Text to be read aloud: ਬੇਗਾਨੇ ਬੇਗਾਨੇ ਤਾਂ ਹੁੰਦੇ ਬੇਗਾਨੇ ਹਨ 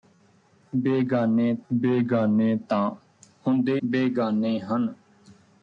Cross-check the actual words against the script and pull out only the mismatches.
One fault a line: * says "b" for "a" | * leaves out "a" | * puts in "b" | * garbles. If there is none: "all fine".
all fine